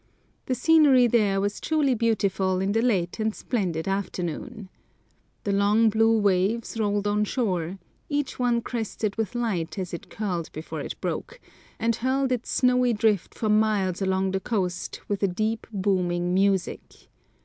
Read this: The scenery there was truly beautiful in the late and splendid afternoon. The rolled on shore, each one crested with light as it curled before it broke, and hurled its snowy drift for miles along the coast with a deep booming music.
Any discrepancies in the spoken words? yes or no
yes